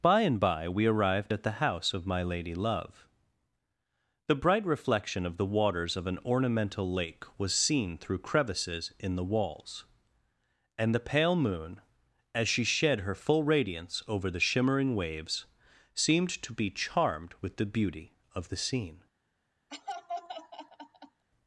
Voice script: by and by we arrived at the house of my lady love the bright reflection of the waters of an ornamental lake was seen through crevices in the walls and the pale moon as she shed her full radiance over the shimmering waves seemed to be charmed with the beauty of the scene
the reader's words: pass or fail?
pass